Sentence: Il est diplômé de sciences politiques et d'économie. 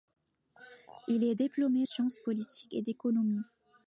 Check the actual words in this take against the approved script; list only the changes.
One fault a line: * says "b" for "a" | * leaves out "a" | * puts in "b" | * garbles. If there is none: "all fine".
* leaves out "de"